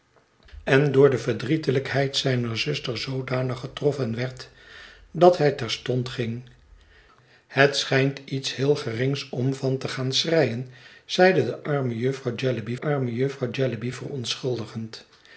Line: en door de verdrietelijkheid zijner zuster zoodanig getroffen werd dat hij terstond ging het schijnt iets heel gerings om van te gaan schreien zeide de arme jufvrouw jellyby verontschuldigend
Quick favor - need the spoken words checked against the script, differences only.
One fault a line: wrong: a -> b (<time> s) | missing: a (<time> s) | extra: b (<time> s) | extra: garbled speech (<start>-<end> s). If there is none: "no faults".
extra: arme jufvrouw jellyby (12.8 s)